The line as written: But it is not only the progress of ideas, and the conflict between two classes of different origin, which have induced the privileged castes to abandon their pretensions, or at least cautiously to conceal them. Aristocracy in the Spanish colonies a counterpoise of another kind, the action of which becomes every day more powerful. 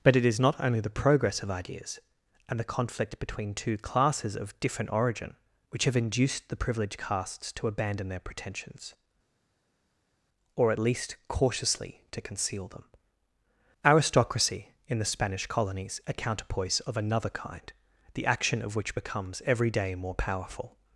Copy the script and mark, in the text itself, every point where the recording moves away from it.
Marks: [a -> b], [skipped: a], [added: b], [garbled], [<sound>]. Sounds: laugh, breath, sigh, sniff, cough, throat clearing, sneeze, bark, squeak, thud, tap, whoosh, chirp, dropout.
But it is not only the progress of ideas, and the conflict between two classes of different origin, which have induced the privileged castes to abandon their pretensions, or at least cautiously to conceal them. Aristocracy in the Spanish colonies a counterpoise of another kind, the action of which becomes every day more powerful.